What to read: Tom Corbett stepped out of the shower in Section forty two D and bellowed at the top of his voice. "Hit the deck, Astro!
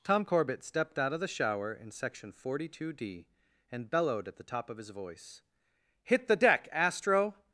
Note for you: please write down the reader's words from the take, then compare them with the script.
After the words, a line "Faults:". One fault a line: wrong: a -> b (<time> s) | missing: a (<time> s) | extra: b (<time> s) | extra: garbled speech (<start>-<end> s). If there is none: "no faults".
Tom Corbett stepped out of the shower in Section forty two D and bellowed at the top of his voice. "Hit the deck, Astro!
Faults:
no faults